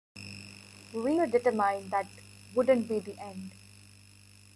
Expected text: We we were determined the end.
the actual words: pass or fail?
fail